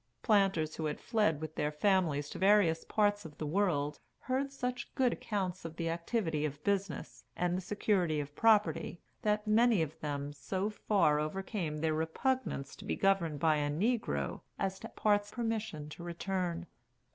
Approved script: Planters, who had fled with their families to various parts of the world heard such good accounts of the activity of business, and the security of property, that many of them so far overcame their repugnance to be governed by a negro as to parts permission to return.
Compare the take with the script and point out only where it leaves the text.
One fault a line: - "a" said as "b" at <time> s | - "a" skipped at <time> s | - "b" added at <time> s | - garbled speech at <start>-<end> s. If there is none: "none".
none